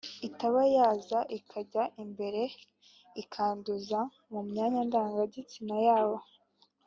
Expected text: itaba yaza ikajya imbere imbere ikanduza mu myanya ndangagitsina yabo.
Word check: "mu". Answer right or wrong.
right